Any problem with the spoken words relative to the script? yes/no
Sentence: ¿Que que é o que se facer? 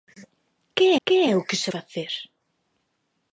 no